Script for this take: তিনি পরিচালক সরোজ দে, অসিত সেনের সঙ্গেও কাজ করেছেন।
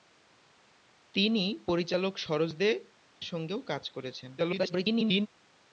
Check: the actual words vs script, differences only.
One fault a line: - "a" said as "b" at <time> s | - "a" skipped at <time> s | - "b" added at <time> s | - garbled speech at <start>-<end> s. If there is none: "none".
- "অসিত সেনের" skipped at 2.7 s
- garbled speech at 4.4-5.3 s